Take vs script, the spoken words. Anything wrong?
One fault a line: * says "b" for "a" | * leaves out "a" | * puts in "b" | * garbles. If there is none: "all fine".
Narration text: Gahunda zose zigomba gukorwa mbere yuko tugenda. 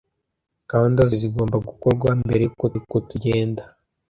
* leaves out "zose"
* puts in "yuko"